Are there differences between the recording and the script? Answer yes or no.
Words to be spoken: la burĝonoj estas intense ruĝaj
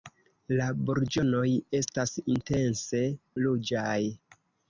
no